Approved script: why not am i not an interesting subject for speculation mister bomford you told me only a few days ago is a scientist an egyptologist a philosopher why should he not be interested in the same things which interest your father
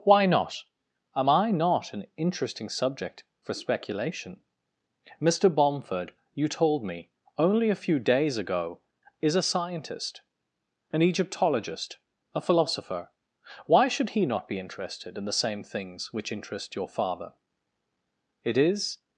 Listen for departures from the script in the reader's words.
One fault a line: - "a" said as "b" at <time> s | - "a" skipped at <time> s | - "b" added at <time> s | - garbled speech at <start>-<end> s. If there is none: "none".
- "it is" added at 18.4 s